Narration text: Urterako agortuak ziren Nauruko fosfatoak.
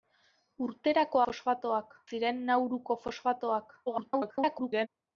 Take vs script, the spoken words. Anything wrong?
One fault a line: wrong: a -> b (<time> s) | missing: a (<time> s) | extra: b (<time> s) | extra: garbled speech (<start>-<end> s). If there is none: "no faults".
wrong: agortuak -> fosfatoak (1.3 s)
extra: garbled speech (3.9-4.9 s)